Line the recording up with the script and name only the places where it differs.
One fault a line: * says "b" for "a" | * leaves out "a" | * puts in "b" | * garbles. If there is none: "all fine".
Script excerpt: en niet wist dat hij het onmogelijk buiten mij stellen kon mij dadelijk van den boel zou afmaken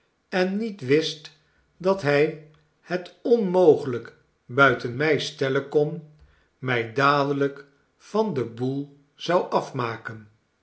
all fine